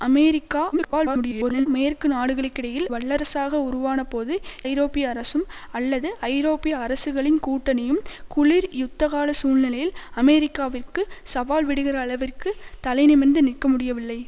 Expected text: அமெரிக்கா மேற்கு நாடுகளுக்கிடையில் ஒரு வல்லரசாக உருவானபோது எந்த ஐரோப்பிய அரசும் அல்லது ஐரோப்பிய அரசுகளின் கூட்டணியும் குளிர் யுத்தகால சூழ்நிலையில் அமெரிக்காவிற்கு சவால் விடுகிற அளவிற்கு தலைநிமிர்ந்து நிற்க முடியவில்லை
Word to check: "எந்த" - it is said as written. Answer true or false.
false